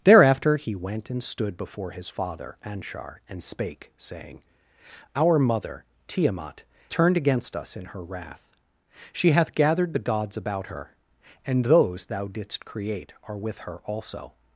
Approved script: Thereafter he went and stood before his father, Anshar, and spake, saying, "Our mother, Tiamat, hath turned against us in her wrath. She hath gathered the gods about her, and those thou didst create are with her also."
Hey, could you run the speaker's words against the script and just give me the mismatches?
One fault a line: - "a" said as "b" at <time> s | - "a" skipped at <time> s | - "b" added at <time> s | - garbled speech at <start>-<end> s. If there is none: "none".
- "hath" skipped at 6.6 s